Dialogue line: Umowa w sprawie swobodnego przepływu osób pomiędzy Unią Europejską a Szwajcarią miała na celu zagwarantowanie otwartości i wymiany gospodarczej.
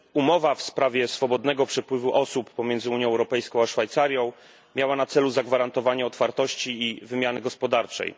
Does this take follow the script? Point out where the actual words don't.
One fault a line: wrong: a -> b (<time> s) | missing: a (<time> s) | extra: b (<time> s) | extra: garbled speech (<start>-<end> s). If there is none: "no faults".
no faults